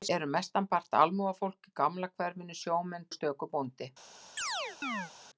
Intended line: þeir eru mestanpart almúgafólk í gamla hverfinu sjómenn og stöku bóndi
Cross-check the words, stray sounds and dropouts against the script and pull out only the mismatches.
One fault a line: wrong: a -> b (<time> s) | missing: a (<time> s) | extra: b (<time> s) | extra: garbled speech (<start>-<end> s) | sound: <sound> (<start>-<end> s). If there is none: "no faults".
sound: chirp (4.4-5.1 s)